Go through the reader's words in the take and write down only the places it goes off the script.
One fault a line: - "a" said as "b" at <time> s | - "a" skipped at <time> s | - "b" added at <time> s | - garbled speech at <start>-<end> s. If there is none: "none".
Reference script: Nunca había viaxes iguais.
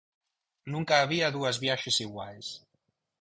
- "dúas" added at 1.4 s